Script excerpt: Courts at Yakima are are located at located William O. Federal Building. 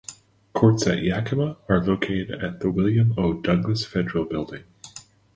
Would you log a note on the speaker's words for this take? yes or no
yes